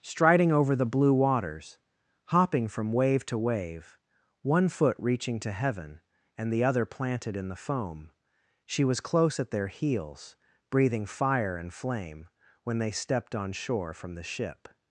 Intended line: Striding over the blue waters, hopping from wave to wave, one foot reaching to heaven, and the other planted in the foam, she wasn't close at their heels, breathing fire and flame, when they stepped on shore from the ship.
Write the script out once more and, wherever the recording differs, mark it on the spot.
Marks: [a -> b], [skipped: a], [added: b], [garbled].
Striding over the blue waters, hopping from wave to wave, one foot reaching to heaven, and the other planted in the foam, she [wasn't -> was] close at their heels, breathing fire and flame, when they stepped on shore from the ship.